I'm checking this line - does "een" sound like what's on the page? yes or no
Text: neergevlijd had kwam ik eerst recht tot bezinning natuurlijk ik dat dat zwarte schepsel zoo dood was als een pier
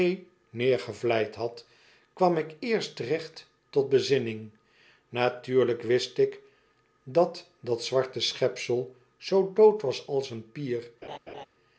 yes